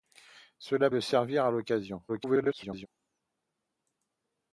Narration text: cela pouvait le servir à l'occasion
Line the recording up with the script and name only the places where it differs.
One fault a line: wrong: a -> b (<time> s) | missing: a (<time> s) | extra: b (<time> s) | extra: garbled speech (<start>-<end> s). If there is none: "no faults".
missing: pouvait (0.9 s)
extra: garbled speech (2.1-2.9 s)